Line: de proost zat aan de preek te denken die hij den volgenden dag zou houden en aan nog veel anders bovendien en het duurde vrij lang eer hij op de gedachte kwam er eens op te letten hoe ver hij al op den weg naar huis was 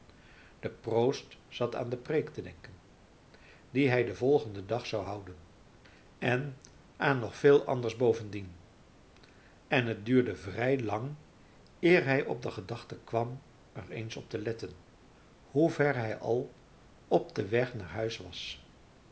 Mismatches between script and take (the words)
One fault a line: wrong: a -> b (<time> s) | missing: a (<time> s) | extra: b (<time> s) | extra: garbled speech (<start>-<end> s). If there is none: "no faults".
no faults